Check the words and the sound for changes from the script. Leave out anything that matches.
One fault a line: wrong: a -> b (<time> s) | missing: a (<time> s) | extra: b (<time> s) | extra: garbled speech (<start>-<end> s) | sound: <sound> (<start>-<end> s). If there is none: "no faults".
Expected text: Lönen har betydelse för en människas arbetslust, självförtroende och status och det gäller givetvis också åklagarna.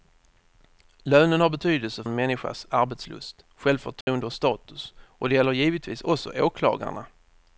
missing: för (2.0 s)
sound: dropout (4.0-4.1 s)